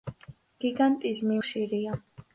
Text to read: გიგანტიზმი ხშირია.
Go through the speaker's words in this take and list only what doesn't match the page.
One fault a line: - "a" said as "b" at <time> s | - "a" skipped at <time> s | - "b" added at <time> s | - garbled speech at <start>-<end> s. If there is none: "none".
none